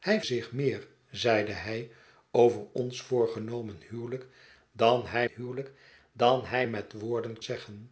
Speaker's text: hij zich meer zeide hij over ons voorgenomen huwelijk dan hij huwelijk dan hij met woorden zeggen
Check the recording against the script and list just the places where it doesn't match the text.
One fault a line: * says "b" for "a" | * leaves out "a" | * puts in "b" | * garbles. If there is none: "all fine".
all fine